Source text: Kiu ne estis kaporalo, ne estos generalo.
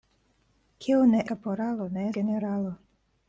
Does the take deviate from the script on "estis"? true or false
true